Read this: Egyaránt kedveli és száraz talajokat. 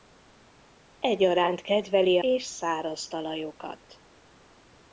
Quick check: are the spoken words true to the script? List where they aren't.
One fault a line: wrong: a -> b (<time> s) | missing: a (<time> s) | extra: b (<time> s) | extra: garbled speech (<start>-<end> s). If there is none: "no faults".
no faults